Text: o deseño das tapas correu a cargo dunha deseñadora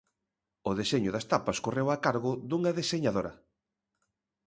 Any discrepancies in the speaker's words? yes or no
no